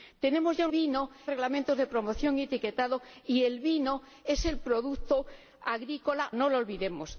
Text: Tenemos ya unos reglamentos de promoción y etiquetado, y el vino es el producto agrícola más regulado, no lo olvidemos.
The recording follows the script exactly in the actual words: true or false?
false